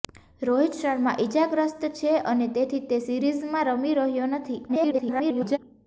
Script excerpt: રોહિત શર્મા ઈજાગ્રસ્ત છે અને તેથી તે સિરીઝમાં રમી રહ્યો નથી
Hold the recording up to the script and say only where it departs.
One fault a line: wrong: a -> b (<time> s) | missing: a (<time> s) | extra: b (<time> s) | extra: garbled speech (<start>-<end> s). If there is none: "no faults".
extra: garbled speech (4.7-5.6 s)